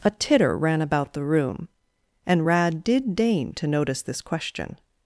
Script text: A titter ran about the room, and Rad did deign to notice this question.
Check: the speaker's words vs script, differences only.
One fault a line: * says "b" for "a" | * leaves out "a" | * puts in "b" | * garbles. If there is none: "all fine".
all fine